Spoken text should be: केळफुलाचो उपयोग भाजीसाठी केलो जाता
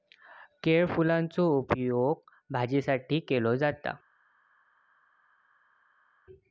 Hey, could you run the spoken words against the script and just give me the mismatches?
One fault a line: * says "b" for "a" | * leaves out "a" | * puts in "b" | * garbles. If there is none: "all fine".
all fine